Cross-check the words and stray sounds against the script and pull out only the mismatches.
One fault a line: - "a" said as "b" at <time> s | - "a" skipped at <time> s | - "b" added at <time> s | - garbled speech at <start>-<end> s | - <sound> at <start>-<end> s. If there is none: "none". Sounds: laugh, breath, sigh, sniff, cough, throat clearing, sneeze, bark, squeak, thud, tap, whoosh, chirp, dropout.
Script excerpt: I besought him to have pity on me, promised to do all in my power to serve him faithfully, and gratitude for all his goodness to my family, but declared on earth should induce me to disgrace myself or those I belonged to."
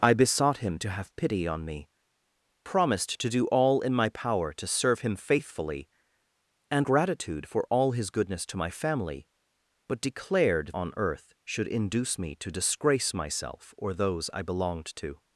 none